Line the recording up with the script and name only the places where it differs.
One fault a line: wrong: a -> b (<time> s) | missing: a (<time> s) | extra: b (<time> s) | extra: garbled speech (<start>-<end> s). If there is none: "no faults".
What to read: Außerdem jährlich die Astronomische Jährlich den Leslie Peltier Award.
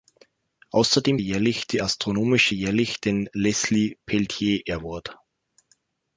no faults